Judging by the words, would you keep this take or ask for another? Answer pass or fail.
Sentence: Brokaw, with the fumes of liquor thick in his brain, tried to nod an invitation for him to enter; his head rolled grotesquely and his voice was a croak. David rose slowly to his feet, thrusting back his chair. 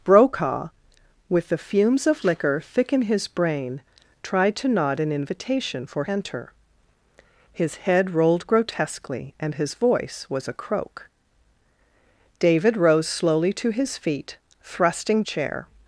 fail